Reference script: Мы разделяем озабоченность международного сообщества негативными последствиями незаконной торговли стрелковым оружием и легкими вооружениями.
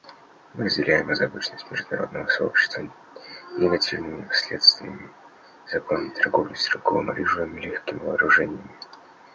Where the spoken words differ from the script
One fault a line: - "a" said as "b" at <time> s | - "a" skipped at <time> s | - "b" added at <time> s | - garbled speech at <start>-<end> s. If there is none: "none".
none